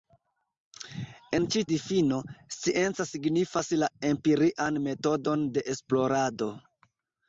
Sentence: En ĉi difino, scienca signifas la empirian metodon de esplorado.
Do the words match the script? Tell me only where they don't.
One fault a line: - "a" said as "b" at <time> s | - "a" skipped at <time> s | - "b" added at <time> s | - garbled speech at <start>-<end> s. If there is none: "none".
none